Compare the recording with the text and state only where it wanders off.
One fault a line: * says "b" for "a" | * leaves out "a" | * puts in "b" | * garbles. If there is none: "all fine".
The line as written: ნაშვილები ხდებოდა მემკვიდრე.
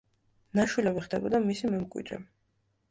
* puts in "მისი"